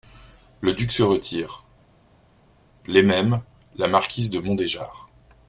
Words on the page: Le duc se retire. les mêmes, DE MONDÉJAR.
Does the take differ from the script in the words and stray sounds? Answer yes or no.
yes